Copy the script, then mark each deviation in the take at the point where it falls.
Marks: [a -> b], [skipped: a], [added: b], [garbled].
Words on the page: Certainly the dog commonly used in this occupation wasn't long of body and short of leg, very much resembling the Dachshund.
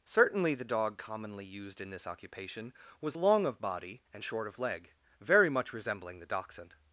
Certainly the dog commonly used in this occupation [wasn't -> was] long of body and short of leg, very much resembling the Dachshund.